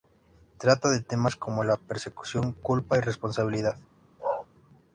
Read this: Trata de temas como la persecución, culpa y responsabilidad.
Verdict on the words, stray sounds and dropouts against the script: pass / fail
fail